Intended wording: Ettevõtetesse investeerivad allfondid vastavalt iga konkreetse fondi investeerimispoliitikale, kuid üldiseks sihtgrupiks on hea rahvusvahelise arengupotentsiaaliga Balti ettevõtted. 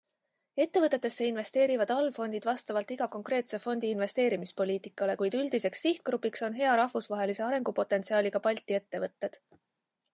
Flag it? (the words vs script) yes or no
no